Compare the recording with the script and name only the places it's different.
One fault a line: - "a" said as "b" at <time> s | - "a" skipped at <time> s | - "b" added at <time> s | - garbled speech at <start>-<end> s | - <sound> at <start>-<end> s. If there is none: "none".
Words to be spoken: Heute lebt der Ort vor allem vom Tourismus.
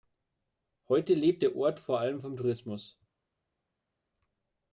none